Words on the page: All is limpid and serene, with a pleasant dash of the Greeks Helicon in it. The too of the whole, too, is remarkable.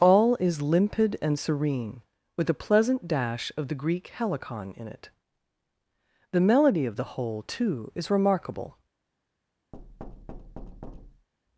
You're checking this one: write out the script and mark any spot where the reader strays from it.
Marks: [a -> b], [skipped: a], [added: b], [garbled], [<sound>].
All is limpid and serene, with a pleasant dash of the [Greeks -> Greek] Helicon in it. The [too -> melody] of the whole, too, is remarkable. [thud]